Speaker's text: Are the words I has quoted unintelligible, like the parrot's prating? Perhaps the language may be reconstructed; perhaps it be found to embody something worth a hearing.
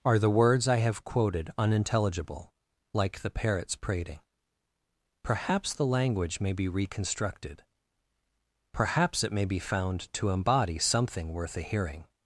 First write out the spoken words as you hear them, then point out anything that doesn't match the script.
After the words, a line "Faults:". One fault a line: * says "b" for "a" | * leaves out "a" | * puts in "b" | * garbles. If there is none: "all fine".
Are the words I have quoted unintelligible, like the parrot's prating? Perhaps the language may be reconstructed; perhaps it may be found to embody something worth a hearing.
Faults:
* says "have" for "has"
* puts in "may"